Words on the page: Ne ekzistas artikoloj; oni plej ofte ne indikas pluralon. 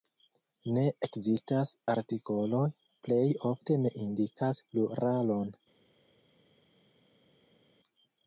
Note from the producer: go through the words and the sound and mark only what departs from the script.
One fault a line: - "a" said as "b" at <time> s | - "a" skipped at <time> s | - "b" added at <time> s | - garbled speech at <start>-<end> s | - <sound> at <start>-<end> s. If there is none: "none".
- "oni" skipped at 2.6 s